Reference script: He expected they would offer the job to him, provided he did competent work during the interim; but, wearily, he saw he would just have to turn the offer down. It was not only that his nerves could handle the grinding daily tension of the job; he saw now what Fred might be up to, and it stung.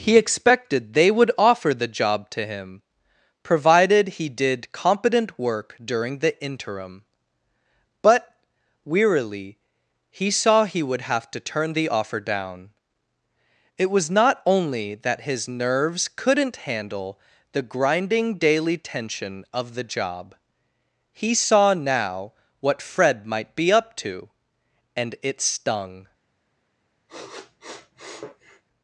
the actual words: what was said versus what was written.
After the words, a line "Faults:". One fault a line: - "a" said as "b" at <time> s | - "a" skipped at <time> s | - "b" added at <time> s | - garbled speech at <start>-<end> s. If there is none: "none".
He expected they would offer the job to him, provided he did competent work during the interim; but, wearily, he saw he would have to turn the offer down. It was not only that his nerves couldn't handle the grinding daily tension of the job; he saw now what Fred might be up to, and it stung.
Faults:
- "just" skipped at 11.0 s
- "could" said as "couldn't" at 16.1 s